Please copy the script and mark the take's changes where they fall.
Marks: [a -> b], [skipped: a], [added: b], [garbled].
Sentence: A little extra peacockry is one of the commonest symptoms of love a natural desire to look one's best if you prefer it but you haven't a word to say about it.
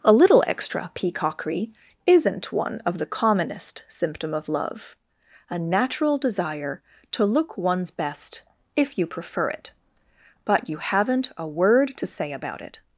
A little extra peacockry [is -> isn't] one of the commonest [symptoms -> symptom] of love a natural desire to look one's best if you prefer it but you haven't a word to say about it.